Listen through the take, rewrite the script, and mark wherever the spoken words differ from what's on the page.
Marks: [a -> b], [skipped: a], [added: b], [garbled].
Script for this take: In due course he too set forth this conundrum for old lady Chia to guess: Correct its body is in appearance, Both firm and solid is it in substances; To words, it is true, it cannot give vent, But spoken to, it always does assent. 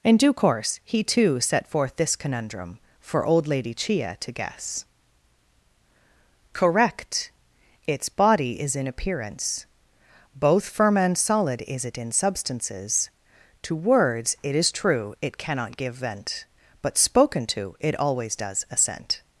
In due course he too set forth this conundrum for old lady Chia to guess: Correct its body is in appearance, Both firm and solid is it in substances; To words, it is true, it cannot give vent, But spoken to, it always does assent.